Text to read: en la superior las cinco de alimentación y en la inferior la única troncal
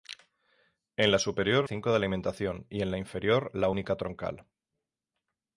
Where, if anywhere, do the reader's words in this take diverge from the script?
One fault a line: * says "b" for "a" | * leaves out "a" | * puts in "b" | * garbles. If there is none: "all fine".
* leaves out "las"